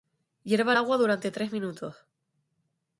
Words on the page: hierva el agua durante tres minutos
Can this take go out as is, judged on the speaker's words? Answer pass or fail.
pass